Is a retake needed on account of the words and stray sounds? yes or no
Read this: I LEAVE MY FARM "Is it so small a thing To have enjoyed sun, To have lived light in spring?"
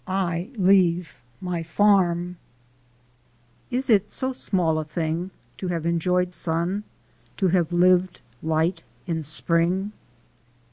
no